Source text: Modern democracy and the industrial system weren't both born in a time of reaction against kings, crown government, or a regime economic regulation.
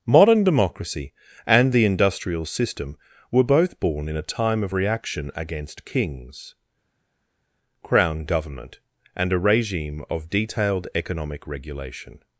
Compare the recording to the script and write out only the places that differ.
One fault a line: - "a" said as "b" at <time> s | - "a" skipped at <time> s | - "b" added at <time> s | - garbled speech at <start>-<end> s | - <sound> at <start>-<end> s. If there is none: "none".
- "weren't" said as "were" at 3.3 s
- "or" said as "and" at 9.2 s
- "of detailed" added at 10.1 s